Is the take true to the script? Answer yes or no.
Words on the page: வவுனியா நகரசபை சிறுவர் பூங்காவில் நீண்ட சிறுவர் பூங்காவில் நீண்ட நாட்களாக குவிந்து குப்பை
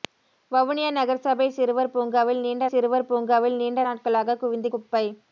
yes